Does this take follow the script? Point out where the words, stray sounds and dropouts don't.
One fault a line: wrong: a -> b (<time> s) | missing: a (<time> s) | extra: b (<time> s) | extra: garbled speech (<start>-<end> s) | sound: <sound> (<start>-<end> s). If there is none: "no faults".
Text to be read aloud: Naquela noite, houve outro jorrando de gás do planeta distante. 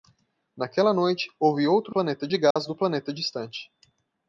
wrong: jorrando -> planeta (1.9 s)
sound: dropout (2.5-2.6 s)